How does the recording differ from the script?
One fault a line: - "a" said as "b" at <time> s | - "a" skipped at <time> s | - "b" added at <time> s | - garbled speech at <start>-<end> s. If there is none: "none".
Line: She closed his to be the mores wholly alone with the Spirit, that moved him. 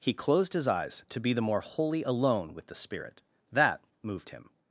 - "She" said as "He" at 0.0 s
- "eyes" added at 0.7 s
- "mores" said as "more" at 1.4 s